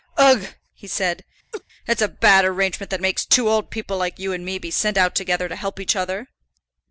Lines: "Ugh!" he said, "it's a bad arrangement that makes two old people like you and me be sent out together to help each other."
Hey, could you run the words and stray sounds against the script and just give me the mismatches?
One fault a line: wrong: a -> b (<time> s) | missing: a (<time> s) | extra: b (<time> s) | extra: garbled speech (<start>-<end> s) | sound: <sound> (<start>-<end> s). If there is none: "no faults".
sound: laugh (1.5-1.6 s)